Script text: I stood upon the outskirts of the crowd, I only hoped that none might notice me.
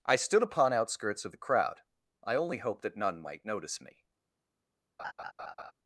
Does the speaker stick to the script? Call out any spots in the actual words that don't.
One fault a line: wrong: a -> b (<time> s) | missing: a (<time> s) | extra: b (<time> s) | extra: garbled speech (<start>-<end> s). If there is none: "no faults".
missing: the (0.7 s)